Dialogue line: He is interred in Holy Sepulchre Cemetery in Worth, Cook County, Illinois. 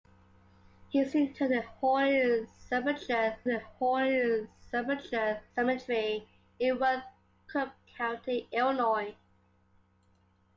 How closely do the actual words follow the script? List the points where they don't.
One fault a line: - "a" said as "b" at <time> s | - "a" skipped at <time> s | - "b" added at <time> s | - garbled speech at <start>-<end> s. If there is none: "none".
- "in Holy Sepulchre" added at 3.5 s